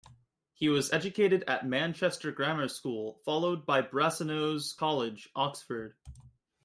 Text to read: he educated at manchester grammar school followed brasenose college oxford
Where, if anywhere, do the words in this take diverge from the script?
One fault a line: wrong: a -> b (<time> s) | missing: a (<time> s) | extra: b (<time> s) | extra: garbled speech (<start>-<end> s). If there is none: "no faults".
extra: was (0.7 s)
extra: by (3.7 s)